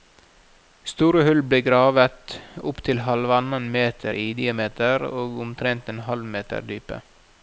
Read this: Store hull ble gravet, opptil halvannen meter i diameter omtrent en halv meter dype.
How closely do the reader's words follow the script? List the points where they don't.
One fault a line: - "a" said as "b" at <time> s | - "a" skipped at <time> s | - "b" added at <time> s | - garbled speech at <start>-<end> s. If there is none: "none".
- "og" added at 5.1 s